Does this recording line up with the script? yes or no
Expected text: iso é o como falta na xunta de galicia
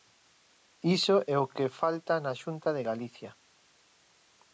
no